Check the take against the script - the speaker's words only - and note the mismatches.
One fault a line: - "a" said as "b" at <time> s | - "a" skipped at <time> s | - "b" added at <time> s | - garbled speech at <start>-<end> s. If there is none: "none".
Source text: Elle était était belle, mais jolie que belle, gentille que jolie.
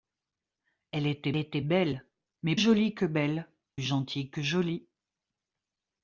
none